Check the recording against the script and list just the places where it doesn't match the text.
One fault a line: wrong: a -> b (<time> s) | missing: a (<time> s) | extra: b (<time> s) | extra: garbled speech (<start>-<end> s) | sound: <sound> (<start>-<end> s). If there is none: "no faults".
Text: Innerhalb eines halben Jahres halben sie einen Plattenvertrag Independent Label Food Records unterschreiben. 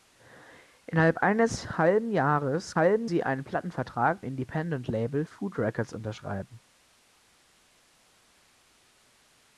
no faults